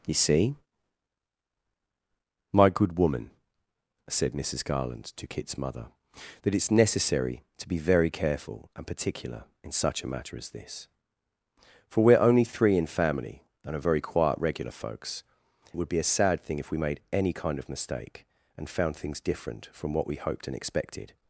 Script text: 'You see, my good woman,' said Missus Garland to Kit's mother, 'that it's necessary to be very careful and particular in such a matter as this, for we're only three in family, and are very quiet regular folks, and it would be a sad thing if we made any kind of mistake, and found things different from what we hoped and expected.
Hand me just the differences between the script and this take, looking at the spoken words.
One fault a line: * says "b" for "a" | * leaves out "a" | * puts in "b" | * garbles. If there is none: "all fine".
* leaves out "and"